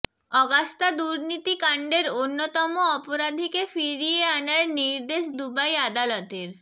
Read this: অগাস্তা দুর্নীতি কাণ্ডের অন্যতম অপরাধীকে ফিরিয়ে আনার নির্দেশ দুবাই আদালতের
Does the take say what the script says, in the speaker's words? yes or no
yes